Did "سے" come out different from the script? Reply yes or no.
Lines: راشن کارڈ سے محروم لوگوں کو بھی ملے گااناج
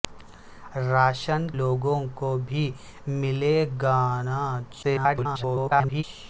yes